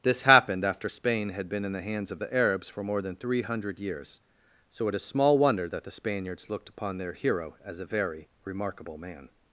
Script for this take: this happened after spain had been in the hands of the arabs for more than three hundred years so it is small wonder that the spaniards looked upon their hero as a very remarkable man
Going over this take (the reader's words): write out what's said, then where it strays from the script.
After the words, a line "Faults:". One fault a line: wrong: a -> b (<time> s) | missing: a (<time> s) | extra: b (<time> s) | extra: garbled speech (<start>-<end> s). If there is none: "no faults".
this happened after spain had been in the hands of the arabs for more than three hundred years so it is small wonder that the spaniards looked upon their hero as a very remarkable man
Faults:
no faults